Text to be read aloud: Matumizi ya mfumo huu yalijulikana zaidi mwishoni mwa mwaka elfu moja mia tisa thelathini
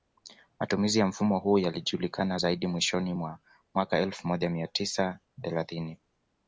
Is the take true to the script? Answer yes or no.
yes